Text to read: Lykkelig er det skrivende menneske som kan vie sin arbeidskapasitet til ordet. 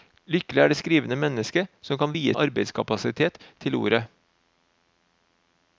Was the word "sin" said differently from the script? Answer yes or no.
yes